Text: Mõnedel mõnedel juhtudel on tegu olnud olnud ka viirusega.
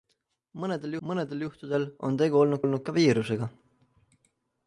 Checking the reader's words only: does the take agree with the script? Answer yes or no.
yes